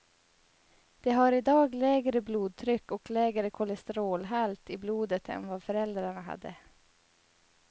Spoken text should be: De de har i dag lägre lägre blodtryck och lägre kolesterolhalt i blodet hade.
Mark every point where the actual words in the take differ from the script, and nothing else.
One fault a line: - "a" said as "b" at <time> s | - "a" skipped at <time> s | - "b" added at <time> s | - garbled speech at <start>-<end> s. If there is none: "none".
- "de" skipped at 1.1 s
- "lägre" skipped at 2.2 s
- "än vad föräldrarna" added at 5.3 s